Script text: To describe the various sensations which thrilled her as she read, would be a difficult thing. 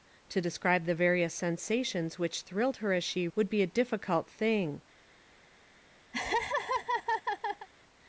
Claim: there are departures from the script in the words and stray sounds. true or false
true